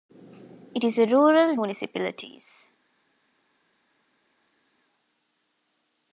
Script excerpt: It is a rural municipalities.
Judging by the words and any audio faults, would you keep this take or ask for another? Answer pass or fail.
pass